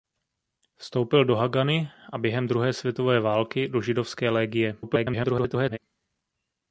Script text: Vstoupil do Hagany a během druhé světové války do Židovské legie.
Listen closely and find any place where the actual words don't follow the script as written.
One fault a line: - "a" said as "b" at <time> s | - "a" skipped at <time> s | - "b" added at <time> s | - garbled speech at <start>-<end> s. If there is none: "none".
- garbled speech at 4.8-5.8 s